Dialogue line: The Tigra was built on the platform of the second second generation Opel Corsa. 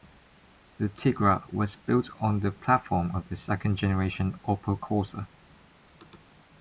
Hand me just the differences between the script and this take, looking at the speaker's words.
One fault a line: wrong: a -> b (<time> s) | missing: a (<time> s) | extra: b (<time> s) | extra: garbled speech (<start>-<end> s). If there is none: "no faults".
missing: second (3.8 s)